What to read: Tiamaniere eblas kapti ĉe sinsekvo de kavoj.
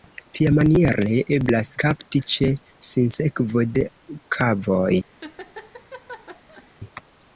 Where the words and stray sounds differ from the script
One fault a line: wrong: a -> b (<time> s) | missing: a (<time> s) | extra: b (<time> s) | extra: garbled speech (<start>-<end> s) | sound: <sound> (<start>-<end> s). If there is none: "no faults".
sound: laugh (5.2-6.7 s)